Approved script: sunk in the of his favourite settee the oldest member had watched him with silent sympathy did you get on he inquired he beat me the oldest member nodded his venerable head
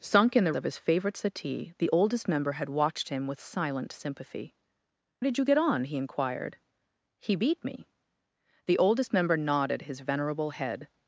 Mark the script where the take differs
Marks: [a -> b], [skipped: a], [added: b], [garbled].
sunk in the of his favourite settee the oldest member had watched him with silent sympathy did you get on he inquired he beat me the oldest member nodded his venerable head